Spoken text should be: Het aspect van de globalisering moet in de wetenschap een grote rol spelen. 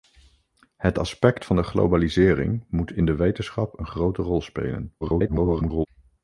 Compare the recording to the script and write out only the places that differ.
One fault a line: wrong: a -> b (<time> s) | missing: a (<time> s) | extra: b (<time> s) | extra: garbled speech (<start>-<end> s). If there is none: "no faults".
extra: garbled speech (5.0-5.9 s)